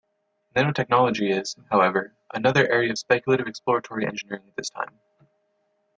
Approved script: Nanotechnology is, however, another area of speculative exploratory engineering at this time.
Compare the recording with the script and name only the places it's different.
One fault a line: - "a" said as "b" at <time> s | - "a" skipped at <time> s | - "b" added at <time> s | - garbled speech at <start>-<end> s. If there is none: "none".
none